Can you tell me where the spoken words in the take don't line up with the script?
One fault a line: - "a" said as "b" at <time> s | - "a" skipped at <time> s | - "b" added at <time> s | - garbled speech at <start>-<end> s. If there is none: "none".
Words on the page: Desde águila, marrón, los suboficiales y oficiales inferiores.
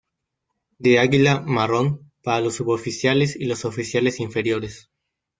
- "Desde" said as "De" at 0.8 s
- "para" added at 2.2 s
- "los" added at 3.5 s